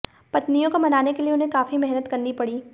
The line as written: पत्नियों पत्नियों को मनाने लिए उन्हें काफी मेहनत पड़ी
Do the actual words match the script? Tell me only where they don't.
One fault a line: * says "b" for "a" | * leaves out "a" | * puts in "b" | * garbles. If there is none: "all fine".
* leaves out "पत्नियों"
* puts in "के"
* puts in "करनी"